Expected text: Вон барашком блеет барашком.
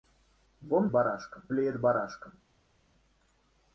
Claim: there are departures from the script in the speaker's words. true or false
false